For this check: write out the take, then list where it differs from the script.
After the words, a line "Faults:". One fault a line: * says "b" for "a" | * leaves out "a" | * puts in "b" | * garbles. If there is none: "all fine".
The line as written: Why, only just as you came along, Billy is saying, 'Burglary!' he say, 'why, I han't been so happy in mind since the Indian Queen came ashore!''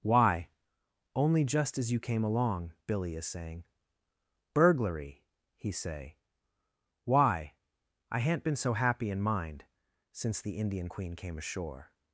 Why, only just as you came along, Billy is saying, 'Burglary!' he say, 'why, I han't been so happy in mind since the Indian Queen came ashore!''
Faults:
all fine